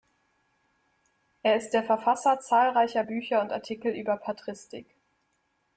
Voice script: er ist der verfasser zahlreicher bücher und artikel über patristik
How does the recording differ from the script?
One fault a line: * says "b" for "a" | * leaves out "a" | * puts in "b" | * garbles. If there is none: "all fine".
all fine